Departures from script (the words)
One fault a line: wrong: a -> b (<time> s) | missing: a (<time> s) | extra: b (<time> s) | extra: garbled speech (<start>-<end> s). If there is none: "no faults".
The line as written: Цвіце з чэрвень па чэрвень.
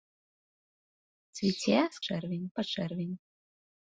no faults